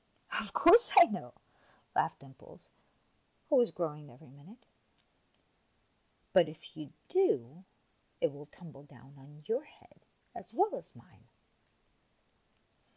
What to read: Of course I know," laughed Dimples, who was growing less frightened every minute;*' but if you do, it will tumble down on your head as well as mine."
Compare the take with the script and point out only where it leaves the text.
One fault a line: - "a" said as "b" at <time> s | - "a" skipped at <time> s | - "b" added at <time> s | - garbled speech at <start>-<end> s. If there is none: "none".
- "less frightened" skipped at 4.1 s